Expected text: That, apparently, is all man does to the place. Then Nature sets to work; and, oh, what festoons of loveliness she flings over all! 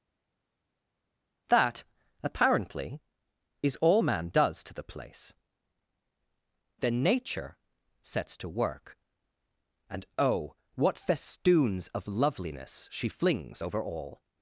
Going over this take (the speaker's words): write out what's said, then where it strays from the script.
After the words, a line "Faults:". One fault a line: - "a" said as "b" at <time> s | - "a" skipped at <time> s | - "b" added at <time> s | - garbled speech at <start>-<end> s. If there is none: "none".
That, apparently, is all man does to the place. Then Nature sets to work; and, oh, what festoons of loveliness she flings over all!
Faults:
none